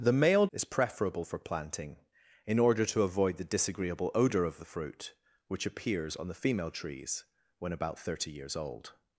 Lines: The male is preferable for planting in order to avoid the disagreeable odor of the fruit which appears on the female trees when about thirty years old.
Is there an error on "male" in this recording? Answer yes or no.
no